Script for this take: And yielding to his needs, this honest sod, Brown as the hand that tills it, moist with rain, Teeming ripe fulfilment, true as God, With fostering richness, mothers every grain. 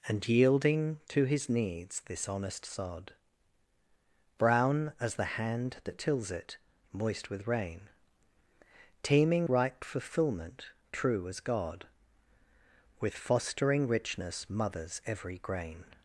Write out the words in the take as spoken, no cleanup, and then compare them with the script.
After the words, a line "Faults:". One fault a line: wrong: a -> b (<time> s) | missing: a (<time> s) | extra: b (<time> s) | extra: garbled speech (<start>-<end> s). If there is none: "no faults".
And yielding to his needs, this honest sod, Brown as the hand that tills it, moist with rain, Teeming ripe fulfilment, true as God, With fostering richness, mothers every grain.
Faults:
no faults